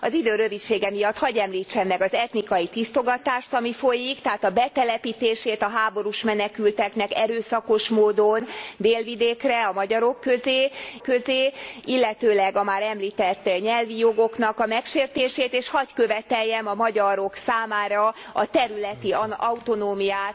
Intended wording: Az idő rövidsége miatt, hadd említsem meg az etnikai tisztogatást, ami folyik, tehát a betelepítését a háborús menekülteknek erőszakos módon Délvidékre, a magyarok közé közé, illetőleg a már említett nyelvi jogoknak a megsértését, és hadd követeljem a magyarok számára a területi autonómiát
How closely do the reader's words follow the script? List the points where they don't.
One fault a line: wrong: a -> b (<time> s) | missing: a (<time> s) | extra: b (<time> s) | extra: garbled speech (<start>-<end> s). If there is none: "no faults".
no faults